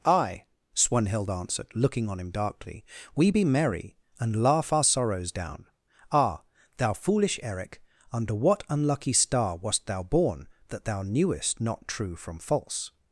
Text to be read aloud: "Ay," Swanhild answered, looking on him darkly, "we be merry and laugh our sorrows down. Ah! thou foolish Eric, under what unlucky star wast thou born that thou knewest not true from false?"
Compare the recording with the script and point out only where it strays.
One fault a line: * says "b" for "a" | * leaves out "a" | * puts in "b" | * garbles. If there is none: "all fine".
all fine